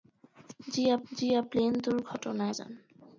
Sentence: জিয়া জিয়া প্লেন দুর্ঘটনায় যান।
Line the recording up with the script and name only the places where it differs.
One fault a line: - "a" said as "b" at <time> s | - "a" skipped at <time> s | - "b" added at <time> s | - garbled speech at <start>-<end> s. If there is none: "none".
none